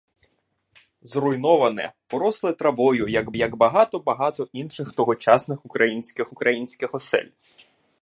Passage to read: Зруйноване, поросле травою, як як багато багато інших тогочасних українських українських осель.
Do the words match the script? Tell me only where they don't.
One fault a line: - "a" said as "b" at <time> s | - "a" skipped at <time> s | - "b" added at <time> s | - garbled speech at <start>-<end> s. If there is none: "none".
none